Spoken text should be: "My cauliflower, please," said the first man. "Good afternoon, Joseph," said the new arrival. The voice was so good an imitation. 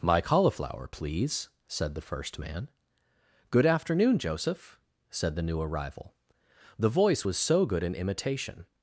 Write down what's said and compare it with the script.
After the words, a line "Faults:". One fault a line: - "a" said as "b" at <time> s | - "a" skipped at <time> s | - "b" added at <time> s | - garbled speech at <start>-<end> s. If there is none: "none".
"My cauliflower, please," said the first man. "Good afternoon, Joseph," said the new arrival. The voice was so good an imitation.
Faults:
none